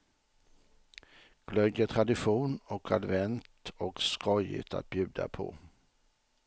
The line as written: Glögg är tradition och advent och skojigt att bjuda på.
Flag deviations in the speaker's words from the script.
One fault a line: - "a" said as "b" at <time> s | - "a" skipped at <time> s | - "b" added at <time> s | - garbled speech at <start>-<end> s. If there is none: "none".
none